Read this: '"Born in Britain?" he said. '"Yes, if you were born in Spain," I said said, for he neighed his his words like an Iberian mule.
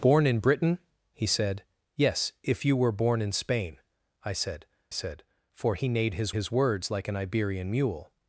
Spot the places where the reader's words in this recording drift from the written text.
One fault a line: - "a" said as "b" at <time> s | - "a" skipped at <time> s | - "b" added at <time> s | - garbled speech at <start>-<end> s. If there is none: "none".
none